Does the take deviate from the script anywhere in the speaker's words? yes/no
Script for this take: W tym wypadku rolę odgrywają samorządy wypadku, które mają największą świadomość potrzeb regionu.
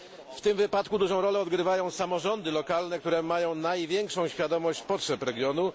yes